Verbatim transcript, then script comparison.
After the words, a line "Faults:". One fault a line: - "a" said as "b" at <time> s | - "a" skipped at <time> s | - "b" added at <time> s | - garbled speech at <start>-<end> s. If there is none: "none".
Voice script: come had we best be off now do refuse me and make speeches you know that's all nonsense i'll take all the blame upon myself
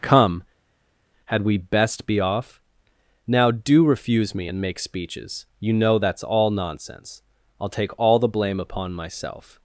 come had we best be off now do refuse me and make speeches you know that's all nonsense i'll take all the blame upon myself
Faults:
none